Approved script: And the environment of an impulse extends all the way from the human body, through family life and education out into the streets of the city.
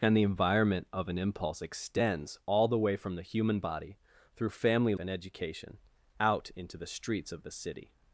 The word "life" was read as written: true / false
false